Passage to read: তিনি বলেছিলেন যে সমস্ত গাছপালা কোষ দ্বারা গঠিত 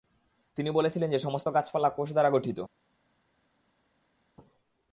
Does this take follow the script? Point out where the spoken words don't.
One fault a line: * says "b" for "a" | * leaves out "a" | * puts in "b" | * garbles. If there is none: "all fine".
all fine